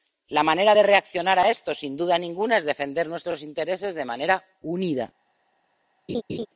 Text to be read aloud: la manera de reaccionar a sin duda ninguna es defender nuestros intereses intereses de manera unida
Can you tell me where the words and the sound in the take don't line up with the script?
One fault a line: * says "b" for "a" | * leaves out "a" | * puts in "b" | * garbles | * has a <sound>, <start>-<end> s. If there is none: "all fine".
* puts in "esto"
* leaves out "intereses"
* has a laugh, 6.1-6.5 s